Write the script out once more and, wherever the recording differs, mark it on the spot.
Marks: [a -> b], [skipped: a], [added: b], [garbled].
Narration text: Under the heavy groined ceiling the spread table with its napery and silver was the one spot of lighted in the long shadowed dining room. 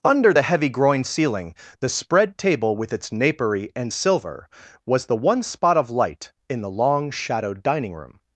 Under the heavy groined ceiling the spread table with its napery and silver was the one spot of [lighted -> light] in the long shadowed dining room.